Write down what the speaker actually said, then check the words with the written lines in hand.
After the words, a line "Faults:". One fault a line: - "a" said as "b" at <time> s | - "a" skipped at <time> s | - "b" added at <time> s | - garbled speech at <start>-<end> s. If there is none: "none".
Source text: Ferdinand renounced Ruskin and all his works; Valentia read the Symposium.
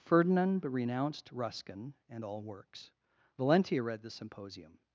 Ferdinand renounced Ruskin and all works; Valentia read the Symposium.
Faults:
- "his" skipped at 2.4 s